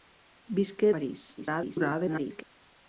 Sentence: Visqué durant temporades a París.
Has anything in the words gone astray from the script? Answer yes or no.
yes